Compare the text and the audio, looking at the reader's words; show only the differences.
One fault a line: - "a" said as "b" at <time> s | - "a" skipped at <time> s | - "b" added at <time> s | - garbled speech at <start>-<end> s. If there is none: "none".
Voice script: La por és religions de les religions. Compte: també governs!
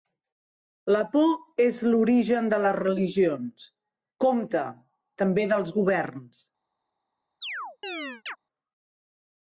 - "religions" said as "l'origen" at 1.9 s
- "dels" added at 5.5 s